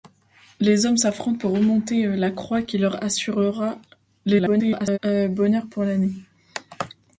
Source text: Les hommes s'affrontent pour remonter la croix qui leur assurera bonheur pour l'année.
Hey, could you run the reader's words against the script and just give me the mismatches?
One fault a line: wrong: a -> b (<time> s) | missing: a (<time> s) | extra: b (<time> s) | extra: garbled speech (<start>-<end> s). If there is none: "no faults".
extra: garbled speech (4.2-5.0 s)